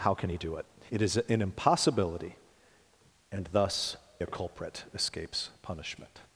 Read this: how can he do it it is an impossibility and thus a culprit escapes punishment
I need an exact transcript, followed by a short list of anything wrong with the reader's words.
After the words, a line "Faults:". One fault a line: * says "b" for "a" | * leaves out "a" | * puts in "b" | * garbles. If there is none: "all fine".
how can he do it it is an impossibility and thus a culprit escapes punishment
Faults:
all fine